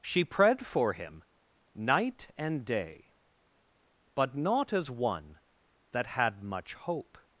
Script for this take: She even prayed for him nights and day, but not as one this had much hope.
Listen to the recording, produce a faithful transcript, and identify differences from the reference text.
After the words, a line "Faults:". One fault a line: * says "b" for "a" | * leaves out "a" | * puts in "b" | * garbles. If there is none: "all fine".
She prayed for him night and day, but not as one that had much hope.
Faults:
* leaves out "even"
* says "night" for "nights"
* says "that" for "this"